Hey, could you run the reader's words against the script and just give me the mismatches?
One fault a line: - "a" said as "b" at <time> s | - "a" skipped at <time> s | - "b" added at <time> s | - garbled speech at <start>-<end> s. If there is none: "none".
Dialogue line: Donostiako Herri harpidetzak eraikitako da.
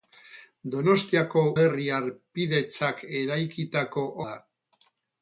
none